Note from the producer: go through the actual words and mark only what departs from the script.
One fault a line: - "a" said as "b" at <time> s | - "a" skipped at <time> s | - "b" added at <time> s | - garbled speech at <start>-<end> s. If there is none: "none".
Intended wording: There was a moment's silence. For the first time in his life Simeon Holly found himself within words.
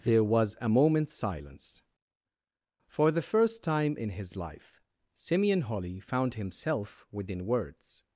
none